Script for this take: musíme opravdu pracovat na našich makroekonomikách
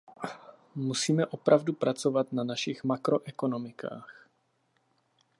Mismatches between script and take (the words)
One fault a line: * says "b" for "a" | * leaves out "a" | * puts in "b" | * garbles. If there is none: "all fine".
all fine